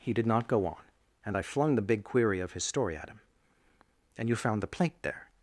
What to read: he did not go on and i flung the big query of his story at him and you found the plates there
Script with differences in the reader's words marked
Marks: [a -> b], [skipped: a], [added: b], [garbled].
he did not go on and i flung the big query of his story at him and you found the [plates -> plate] there